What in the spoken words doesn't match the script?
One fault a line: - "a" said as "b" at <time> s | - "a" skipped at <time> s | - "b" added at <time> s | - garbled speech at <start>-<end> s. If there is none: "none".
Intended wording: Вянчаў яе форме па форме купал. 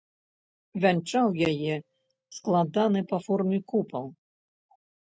- "форме" said as "складаны" at 2.4 s